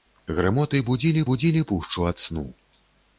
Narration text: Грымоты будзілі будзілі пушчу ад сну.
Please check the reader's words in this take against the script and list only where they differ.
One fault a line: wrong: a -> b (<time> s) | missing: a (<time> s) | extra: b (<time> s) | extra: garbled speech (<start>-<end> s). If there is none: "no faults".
no faults